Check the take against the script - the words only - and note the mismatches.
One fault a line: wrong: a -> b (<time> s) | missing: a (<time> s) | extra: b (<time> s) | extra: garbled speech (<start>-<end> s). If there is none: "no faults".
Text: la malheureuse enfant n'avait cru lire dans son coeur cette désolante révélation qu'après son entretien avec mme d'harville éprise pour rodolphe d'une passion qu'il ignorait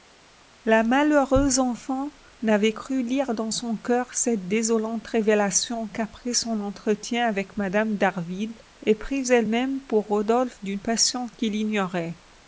extra: elle même (9.3 s)